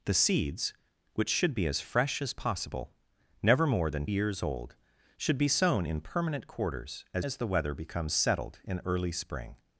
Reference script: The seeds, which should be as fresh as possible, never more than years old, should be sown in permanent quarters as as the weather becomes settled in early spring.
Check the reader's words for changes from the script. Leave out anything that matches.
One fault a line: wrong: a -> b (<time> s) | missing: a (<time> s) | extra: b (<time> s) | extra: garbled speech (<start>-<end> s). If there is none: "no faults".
no faults